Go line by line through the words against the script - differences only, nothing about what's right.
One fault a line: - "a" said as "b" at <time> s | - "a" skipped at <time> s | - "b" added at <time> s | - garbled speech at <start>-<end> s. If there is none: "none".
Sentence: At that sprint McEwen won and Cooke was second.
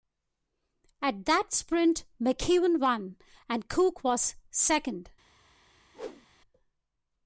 none